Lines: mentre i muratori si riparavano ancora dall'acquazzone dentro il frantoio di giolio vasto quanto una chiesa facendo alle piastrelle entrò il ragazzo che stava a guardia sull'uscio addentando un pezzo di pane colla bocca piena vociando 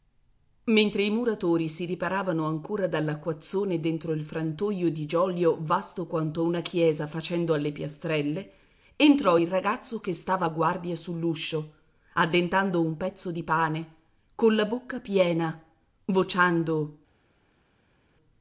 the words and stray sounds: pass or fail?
pass